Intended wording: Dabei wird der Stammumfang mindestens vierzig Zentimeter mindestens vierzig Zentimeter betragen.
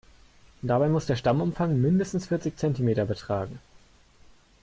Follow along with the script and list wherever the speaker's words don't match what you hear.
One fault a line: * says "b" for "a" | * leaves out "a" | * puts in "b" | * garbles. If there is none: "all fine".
* says "muss" for "wird"
* leaves out "mindestens vierzig Zentimeter"